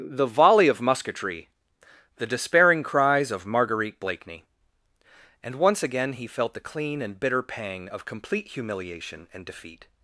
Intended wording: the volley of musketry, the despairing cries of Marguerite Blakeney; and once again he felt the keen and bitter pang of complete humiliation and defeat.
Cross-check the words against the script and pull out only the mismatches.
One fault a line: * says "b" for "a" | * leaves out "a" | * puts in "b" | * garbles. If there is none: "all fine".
* says "clean" for "keen"